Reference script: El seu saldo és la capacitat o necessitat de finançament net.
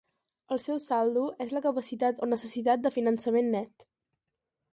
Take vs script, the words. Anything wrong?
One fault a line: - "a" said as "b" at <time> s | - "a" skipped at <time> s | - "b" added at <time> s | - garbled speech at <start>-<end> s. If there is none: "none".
none